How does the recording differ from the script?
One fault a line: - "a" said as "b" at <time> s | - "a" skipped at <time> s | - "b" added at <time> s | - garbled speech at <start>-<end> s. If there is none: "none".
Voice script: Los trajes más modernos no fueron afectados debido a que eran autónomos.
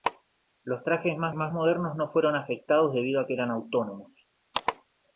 - "más" added at 1.3 s